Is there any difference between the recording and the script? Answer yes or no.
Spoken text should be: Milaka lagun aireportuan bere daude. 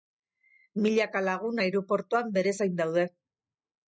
yes